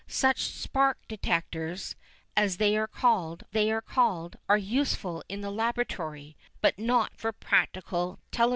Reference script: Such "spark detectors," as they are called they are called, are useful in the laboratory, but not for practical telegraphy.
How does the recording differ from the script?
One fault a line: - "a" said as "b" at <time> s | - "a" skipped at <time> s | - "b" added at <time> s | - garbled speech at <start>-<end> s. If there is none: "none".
none